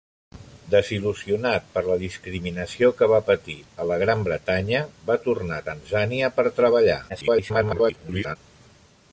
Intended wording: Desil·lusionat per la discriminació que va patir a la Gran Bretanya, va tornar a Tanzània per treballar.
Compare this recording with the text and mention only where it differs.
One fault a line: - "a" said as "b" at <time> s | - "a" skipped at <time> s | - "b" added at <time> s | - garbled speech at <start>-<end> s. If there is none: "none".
- garbled speech at 7.1-8.4 s